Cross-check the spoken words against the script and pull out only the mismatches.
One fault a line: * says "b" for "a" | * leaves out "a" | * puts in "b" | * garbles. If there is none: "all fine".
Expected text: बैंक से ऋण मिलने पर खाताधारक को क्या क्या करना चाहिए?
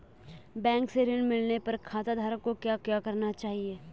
all fine